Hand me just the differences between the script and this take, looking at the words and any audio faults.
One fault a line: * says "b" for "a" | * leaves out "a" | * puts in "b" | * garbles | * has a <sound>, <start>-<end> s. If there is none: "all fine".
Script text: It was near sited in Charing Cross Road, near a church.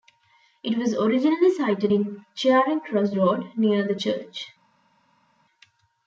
* says "originally" for "near"
* says "the" for "a"